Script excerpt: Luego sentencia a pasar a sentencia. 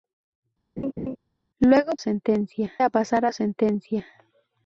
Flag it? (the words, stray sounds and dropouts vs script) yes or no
yes